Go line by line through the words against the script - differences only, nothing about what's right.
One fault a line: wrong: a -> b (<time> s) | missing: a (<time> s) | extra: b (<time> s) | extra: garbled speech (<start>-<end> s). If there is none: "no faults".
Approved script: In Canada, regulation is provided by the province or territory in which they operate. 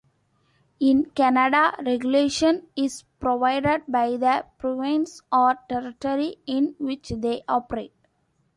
no faults